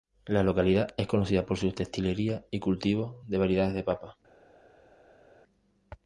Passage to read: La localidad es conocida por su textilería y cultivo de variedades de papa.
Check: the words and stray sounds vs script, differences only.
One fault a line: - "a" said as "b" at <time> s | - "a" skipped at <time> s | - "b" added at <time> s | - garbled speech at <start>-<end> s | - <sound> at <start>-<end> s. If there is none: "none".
none